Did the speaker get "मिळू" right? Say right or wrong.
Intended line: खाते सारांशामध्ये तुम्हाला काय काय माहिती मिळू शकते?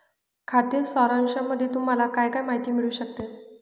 right